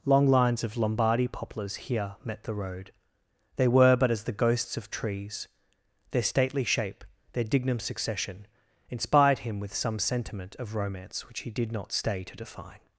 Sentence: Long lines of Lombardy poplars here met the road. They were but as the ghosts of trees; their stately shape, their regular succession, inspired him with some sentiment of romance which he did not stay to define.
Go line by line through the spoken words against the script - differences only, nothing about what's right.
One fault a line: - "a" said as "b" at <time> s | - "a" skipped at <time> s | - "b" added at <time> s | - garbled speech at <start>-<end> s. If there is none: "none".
- "regular" said as "dignum" at 7.4 s